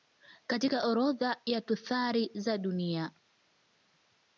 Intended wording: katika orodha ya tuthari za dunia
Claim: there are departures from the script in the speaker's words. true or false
false